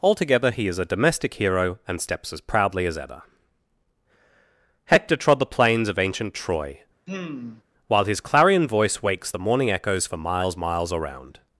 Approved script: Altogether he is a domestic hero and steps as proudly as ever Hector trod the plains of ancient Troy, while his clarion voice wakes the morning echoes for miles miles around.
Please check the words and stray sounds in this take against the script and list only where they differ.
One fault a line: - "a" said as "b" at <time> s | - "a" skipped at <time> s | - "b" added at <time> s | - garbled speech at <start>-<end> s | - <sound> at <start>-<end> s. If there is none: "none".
- sigh at 7.1-7.6 s